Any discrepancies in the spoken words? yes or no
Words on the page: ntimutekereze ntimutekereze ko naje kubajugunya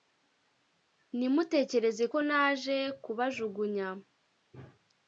yes